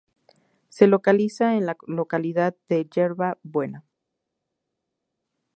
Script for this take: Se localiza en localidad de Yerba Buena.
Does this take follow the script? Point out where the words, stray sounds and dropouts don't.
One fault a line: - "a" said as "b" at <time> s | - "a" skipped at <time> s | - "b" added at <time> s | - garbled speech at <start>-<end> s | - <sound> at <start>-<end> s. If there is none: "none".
- "la" added at 1.7 s